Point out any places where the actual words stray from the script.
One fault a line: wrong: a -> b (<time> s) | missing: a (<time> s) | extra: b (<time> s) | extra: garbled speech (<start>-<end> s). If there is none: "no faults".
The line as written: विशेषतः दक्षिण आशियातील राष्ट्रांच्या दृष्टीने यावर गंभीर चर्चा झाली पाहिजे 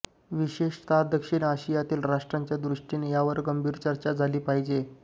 no faults